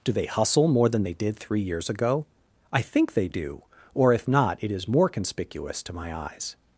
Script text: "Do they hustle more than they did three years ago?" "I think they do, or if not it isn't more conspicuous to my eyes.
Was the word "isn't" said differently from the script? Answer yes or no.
yes